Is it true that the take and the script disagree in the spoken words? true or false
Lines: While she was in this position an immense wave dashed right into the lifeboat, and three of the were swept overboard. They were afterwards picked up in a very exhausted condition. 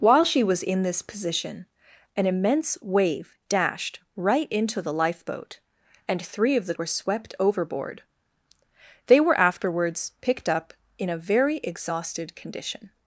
false